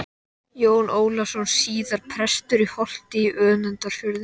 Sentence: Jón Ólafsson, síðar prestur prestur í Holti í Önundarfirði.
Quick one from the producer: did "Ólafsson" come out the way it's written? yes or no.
yes